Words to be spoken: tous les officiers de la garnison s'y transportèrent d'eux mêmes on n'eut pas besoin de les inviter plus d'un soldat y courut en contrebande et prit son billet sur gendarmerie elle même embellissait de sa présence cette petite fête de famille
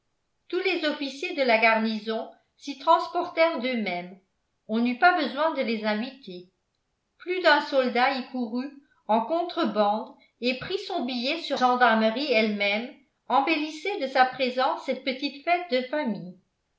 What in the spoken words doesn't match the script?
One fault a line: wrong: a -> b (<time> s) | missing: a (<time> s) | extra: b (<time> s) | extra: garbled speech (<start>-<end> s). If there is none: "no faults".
no faults